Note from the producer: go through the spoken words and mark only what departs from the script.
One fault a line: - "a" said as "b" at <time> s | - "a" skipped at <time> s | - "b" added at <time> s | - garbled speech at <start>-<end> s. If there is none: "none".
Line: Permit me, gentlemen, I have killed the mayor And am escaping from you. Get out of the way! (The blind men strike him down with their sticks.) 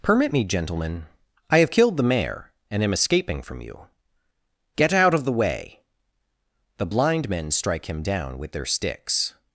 none